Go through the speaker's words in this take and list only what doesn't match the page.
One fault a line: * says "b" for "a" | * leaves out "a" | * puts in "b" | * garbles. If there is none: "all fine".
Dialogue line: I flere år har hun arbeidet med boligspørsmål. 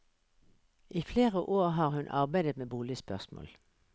all fine